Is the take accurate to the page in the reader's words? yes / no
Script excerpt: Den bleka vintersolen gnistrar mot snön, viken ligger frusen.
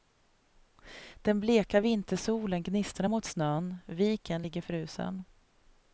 yes